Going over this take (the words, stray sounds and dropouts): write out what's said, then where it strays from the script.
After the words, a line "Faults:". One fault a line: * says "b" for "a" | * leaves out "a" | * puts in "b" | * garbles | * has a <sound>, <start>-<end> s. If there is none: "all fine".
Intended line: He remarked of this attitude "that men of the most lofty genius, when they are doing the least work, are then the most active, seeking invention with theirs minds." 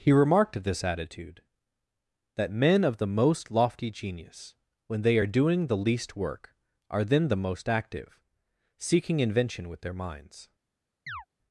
He remarked of this attitude "that men of the most lofty genius, when they are doing the least work, are then the most active, seeking invention with their minds."
Faults:
* says "their" for "theirs"
* has a chirp, 11.1-11.3 s